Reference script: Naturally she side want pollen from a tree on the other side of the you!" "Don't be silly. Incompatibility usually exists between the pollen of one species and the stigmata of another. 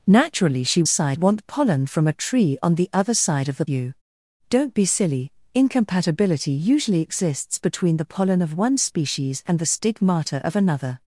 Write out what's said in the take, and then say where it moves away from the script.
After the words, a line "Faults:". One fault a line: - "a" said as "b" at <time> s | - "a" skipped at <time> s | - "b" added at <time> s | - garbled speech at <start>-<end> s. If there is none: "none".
Naturally she side want pollen from a tree on the other side of the you!" "Don't be silly. Incompatibility usually exists between the pollen of one species and the stigmata of another.
Faults:
none